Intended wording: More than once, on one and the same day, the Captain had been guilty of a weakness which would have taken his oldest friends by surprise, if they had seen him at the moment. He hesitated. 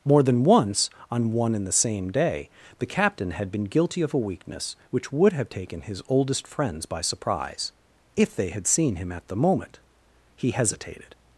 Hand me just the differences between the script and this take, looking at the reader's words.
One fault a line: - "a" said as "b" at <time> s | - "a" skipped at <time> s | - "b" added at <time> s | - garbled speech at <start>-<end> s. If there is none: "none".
none